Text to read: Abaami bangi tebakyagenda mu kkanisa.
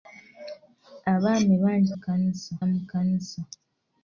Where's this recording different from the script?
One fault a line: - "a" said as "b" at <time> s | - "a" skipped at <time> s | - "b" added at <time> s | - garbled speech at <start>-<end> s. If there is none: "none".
- "tebakyagenda" said as "kkanisa" at 1.9 s